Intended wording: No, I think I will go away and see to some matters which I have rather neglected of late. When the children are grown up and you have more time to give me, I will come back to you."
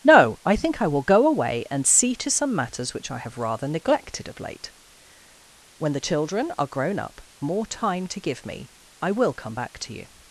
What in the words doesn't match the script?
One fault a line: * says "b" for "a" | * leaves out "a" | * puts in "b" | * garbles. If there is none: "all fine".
* leaves out "and you have"